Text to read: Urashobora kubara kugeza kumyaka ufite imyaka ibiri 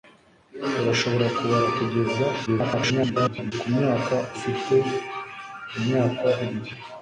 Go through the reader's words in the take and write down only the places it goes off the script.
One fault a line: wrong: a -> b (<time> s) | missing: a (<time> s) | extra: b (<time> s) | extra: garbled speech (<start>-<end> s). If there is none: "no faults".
extra: garbled speech (2.5-3.5 s)